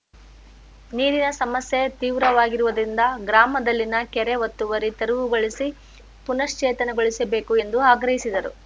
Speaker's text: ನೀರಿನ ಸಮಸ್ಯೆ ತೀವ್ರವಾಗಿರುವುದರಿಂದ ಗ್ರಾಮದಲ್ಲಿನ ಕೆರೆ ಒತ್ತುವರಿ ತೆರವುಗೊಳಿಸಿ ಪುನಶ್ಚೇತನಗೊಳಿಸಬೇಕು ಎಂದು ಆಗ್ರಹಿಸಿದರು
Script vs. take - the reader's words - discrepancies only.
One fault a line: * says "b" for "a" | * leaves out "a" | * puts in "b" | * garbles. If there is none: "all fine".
all fine